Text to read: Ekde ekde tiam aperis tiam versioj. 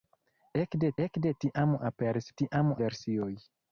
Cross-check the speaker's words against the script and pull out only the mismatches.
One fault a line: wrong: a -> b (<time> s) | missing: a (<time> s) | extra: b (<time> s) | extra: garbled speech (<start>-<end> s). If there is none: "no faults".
no faults